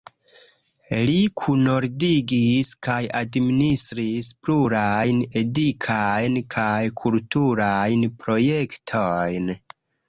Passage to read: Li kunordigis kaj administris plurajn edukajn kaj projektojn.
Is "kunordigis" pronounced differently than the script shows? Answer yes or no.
no